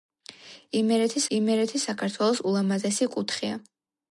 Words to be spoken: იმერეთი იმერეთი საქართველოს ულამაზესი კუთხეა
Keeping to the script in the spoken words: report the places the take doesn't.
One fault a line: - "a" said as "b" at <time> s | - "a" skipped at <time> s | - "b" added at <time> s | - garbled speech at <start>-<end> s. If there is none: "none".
none